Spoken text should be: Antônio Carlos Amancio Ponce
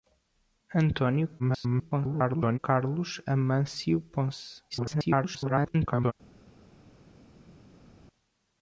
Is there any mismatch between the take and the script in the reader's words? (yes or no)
yes